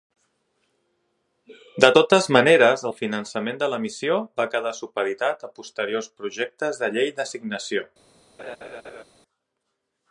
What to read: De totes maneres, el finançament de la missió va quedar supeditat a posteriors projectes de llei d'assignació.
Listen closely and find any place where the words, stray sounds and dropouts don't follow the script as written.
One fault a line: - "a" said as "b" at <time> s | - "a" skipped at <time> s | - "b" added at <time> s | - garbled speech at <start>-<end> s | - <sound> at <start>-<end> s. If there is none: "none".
- laugh at 8.4-9.0 s